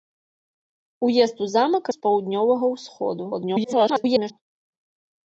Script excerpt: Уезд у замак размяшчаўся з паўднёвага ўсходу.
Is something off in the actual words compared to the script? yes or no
yes